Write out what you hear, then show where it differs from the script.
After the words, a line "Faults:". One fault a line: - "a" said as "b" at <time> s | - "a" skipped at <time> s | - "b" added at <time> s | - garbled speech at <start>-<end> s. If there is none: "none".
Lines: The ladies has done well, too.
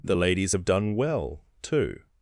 The ladies have done well, too.
Faults:
- "has" said as "have" at 0.5 s